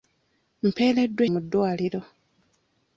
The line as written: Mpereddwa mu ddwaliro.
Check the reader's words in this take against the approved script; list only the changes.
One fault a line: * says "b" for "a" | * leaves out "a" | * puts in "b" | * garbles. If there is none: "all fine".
all fine